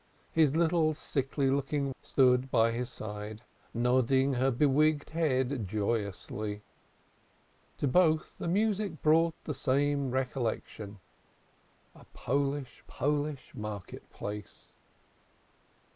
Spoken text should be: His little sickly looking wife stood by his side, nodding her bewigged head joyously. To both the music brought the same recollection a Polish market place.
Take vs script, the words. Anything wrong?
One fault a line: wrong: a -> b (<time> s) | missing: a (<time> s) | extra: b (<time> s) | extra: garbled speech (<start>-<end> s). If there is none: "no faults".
missing: wife (1.9 s)
extra: Polish (12.8 s)